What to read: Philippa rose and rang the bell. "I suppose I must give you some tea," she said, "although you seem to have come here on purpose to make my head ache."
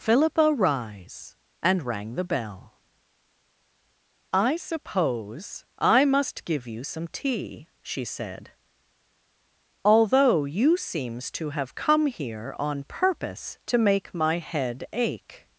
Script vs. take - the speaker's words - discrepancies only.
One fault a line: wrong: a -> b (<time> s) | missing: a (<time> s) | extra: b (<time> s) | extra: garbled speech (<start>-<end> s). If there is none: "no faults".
wrong: rose -> rise (0.5 s)
wrong: seem -> seems (10.8 s)